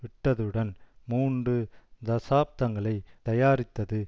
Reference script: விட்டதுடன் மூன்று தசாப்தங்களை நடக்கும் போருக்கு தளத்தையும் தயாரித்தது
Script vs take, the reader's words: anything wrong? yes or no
yes